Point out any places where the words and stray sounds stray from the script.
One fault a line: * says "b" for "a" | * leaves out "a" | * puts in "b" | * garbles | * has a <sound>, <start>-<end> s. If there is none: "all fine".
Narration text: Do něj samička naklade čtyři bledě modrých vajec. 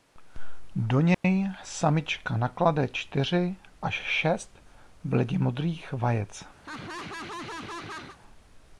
* has a dropout, 1.1-1.2 s
* puts in "až šest"
* has a laugh, 6.6-8.2 s